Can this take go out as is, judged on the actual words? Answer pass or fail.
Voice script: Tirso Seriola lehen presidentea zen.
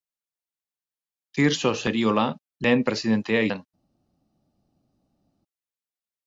pass